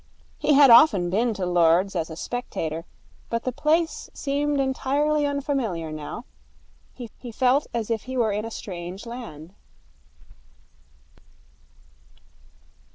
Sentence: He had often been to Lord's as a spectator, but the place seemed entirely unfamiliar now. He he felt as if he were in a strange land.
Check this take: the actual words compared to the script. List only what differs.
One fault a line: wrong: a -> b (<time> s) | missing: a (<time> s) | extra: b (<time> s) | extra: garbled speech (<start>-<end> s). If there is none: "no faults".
no faults